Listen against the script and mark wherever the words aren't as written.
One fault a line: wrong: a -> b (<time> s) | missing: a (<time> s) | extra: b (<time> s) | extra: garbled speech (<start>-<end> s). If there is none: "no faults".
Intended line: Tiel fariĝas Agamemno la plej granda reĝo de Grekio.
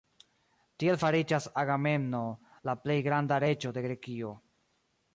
no faults